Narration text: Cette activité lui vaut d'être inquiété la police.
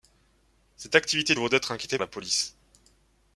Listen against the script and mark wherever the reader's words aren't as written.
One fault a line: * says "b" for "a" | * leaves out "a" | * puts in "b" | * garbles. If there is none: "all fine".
all fine